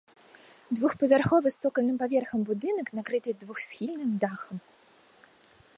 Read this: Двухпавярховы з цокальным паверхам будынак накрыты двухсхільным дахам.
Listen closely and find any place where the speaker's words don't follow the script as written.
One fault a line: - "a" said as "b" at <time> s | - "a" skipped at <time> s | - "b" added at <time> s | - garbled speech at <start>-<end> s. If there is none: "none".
none